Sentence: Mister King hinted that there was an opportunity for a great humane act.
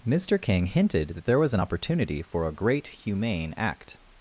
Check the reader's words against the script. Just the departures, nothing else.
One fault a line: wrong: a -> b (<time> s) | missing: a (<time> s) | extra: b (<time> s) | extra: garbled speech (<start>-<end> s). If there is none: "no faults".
no faults